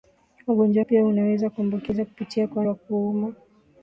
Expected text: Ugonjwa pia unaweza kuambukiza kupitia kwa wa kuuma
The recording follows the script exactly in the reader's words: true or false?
true